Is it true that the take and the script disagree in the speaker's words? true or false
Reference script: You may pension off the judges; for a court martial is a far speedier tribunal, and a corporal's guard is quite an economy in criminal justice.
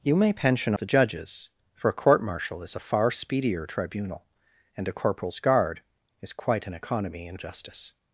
true